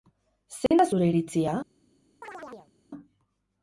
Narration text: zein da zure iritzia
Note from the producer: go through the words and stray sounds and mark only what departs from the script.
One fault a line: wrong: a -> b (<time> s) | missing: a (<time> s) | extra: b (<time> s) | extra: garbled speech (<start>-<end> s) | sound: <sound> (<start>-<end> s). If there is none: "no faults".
sound: dropout (0.7-0.7 s)
sound: chirp (2.2-2.7 s)